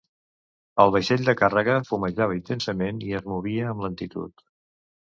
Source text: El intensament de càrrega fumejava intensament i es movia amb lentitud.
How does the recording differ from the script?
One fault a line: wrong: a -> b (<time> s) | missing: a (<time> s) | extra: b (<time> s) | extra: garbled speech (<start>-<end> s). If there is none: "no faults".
wrong: intensament -> vaixell (0.9 s)